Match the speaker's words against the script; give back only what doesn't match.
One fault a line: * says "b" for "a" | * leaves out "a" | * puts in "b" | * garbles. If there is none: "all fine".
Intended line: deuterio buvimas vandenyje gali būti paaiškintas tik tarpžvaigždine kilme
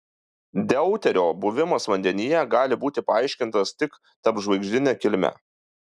all fine